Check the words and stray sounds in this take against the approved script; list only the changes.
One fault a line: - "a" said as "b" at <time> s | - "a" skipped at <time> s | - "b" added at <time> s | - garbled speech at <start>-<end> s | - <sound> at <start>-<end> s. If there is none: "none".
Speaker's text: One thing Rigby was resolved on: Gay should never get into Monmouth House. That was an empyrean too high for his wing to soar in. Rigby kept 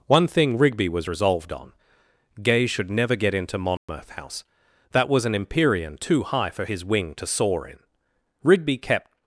- dropout at 3.8-3.9 s